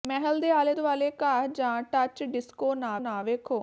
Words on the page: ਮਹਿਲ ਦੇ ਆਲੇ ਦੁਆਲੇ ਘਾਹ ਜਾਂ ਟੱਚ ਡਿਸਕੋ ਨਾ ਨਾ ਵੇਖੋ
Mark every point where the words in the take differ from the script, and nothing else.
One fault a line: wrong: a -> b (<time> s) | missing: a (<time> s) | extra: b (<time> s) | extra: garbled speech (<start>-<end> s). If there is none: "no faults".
no faults